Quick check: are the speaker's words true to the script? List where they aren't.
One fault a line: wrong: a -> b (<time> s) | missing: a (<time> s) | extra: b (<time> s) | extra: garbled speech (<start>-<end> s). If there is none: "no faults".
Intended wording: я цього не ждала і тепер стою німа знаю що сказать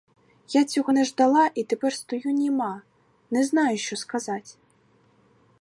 extra: не (3.3 s)